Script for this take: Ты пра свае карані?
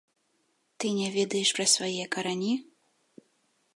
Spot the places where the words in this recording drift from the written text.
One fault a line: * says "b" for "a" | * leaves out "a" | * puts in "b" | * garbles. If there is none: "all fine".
* puts in "не ведаеш"